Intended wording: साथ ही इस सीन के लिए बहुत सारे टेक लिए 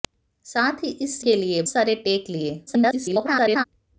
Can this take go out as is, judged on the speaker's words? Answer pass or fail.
fail